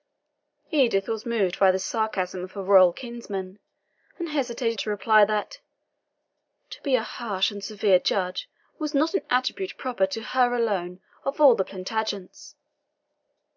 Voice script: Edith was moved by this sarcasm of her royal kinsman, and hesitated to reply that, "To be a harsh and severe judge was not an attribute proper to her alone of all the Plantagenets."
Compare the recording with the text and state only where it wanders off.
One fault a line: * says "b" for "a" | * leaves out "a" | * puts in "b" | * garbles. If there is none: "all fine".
all fine